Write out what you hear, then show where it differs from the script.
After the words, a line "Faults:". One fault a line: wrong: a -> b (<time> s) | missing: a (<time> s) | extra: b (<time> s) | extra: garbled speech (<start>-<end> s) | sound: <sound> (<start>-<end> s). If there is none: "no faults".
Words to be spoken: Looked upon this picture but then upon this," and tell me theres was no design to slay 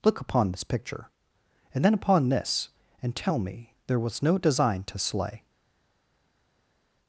Look upon this picture and then upon this," and tell me there was no design to slay
Faults:
wrong: Looked -> Look (0.0 s)
wrong: but -> and (1.8 s)
wrong: theres -> there (3.9 s)